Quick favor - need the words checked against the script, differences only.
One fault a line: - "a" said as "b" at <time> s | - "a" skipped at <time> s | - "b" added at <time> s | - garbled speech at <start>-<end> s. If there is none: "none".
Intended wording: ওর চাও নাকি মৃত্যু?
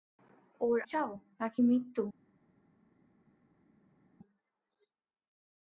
none